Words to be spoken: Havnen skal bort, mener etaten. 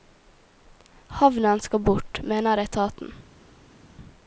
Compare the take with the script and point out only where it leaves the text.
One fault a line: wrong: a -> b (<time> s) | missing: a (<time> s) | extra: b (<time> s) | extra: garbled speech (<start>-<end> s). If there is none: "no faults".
no faults